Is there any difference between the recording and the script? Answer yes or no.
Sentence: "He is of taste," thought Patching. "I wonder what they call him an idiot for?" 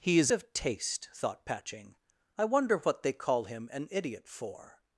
no